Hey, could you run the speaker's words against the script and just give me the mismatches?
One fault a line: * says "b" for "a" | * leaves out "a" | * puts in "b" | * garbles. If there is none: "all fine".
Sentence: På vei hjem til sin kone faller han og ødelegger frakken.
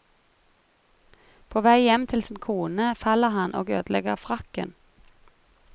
all fine